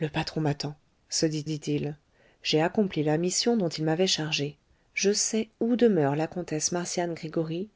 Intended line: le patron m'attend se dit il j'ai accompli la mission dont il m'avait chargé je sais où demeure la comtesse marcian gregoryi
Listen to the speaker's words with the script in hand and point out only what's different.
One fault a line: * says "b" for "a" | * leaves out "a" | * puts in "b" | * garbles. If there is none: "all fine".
* puts in "dit"